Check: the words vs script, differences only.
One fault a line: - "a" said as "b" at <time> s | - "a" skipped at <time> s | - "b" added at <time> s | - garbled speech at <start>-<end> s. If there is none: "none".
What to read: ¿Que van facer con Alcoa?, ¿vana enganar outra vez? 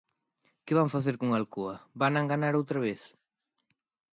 none